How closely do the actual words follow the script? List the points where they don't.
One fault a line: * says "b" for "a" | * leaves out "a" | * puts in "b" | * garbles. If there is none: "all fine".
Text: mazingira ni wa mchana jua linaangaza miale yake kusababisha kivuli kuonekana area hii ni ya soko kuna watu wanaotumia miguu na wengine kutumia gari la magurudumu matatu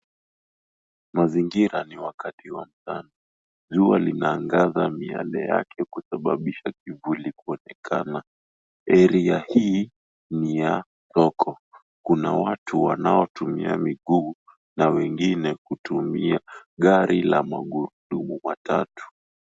* puts in "wakati"